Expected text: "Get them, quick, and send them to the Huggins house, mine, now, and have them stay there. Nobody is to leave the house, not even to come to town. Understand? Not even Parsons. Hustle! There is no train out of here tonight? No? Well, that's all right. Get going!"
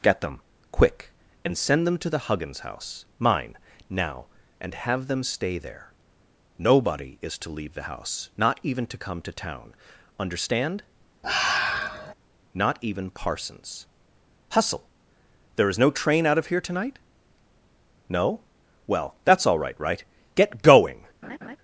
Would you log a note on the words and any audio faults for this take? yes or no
yes